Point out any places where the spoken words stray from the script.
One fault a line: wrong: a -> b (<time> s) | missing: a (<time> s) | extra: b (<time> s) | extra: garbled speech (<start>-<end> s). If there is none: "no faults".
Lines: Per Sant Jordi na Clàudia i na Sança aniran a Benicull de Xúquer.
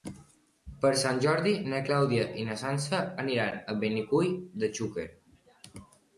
no faults